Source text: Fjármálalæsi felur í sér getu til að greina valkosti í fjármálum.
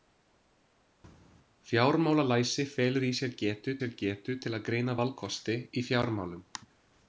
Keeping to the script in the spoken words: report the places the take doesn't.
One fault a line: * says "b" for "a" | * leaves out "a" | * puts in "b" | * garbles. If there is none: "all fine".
* puts in "sér getu"